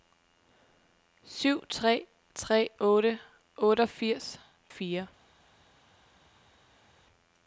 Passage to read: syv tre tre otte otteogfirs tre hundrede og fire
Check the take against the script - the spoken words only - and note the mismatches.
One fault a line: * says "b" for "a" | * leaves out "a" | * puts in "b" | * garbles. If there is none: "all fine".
* leaves out "tre hundrede og"